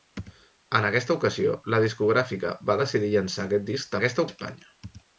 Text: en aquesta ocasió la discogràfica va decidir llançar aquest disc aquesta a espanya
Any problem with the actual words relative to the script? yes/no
no